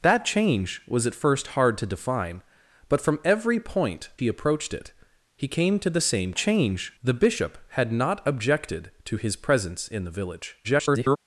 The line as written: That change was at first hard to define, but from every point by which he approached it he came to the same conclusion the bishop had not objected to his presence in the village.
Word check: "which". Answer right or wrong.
wrong